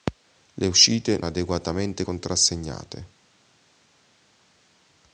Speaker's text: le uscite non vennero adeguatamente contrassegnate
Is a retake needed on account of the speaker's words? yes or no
yes